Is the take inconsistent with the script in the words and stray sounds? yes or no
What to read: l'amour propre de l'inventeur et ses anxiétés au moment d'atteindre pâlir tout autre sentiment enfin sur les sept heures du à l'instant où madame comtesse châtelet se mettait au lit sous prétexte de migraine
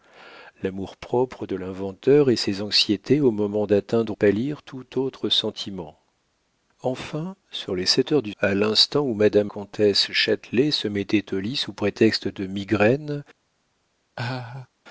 yes